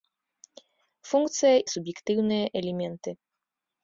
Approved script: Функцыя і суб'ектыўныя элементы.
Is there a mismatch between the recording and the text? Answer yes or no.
no